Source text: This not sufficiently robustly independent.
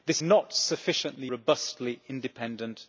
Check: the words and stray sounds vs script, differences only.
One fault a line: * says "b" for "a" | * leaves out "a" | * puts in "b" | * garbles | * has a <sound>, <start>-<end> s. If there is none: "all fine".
all fine